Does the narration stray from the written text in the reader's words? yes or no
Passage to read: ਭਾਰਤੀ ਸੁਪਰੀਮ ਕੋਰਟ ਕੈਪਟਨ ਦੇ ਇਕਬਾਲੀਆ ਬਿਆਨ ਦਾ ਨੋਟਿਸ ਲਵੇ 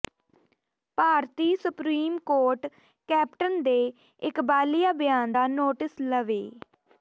no